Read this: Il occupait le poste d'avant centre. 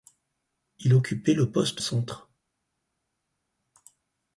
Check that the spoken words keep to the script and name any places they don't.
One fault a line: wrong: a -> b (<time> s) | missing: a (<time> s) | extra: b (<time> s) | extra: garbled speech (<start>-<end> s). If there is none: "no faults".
missing: d'avant (1.8 s)